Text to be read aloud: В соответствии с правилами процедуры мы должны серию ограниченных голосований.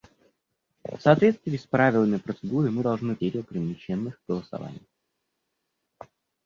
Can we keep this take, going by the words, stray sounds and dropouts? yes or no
yes